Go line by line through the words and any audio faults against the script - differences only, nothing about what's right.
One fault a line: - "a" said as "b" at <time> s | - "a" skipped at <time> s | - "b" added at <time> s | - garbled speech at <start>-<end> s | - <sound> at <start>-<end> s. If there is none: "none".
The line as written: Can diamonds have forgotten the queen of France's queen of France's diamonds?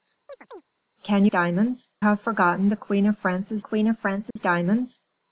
- chirp at 0.3-0.6 s
- dropout at 4.3-4.4 s